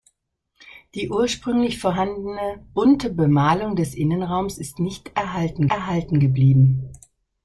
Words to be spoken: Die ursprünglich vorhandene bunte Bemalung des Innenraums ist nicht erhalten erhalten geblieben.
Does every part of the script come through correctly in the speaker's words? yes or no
yes